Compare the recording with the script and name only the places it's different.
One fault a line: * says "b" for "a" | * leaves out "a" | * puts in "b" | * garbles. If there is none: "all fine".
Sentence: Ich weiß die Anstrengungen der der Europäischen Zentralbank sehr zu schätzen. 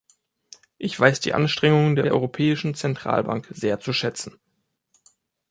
all fine